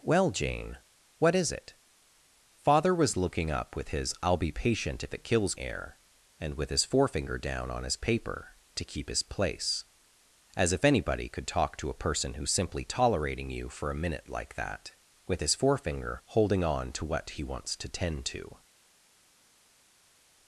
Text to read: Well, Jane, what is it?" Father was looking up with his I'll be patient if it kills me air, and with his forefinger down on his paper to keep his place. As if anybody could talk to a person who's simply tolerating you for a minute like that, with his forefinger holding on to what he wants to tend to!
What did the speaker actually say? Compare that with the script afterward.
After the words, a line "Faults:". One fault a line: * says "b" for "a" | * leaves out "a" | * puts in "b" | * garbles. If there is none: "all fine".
Well, Jane, what is it?" Father was looking up with his I'll be patient if it kills air, and with his forefinger down on his paper to keep his place. As if anybody could talk to a person who's simply tolerating you for a minute like that, with his forefinger holding on to what he wants to tend to!
Faults:
* leaves out "me"